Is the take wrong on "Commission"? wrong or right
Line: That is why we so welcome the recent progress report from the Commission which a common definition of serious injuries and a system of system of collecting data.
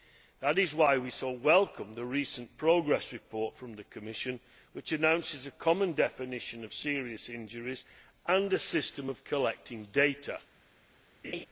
right